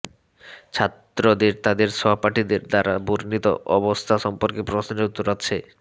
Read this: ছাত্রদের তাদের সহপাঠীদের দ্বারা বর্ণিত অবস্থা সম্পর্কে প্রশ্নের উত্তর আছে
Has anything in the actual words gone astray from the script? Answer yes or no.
no